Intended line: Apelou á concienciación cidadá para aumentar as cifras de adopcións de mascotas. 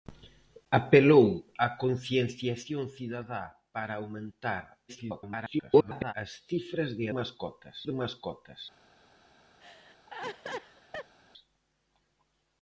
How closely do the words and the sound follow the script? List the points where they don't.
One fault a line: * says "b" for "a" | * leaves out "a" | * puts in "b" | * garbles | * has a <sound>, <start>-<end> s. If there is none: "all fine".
* garbles
* says "mascotas" for "adopcións"
* has a laugh, 9.6-11.1 s